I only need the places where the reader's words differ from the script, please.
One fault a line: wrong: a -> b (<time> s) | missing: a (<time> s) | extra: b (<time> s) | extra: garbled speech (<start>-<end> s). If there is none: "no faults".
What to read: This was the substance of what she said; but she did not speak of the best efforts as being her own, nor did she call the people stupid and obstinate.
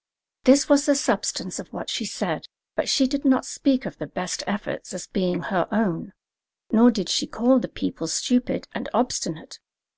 no faults